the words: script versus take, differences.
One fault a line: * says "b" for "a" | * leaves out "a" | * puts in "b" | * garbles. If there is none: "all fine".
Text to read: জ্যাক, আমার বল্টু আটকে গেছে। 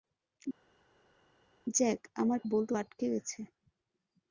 all fine